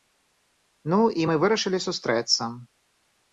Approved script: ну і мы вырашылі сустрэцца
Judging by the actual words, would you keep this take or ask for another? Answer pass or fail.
pass